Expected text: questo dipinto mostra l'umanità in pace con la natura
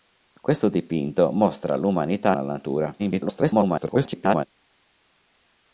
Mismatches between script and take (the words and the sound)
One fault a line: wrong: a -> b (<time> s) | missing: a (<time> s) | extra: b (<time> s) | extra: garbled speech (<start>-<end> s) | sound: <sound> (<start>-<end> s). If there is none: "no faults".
missing: in pace con (2.4 s)
extra: garbled speech (3.0-4.5 s)